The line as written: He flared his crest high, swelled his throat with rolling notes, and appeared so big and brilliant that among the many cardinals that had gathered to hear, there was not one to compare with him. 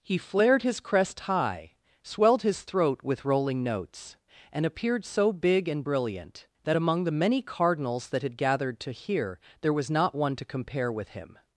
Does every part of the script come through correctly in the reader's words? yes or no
yes